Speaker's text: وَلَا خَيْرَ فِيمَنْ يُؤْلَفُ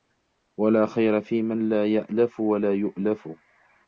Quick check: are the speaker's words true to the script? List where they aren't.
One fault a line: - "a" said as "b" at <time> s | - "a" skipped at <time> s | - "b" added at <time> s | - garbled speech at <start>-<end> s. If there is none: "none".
- "لَا يَأْلَفُ وَلَا" added at 1.7 s